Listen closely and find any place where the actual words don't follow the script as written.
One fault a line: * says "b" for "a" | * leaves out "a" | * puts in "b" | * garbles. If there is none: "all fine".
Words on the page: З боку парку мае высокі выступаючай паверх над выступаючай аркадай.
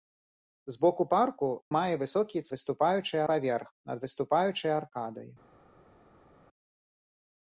all fine